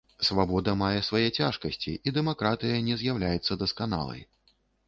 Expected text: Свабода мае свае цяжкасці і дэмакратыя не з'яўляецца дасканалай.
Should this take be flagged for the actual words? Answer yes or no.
no